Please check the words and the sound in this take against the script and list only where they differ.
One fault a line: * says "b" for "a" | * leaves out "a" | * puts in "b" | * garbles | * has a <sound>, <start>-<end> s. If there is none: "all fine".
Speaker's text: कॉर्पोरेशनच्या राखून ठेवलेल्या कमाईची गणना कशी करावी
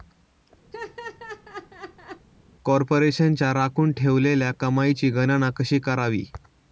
* has a laugh, 0.7-2.3 s